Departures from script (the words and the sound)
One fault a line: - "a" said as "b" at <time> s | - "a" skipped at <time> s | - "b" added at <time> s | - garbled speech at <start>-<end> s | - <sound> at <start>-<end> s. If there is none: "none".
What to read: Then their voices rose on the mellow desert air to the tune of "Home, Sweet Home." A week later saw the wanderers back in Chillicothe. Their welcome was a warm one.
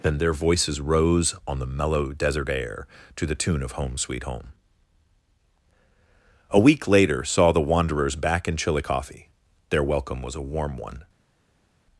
none